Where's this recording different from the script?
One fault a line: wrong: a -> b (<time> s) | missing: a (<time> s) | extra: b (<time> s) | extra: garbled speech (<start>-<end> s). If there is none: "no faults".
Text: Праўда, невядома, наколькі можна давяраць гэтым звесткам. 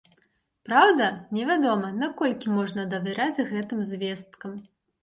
no faults